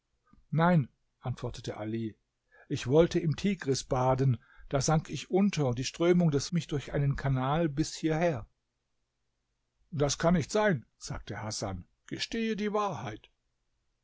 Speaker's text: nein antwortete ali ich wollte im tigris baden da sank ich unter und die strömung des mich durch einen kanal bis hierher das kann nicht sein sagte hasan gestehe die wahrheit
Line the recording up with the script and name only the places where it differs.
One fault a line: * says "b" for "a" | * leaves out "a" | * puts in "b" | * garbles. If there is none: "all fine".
all fine